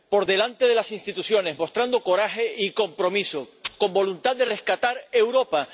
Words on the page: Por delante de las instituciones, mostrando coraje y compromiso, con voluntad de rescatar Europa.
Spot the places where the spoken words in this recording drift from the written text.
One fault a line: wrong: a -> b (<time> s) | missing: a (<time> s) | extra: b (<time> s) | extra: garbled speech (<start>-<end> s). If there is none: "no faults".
no faults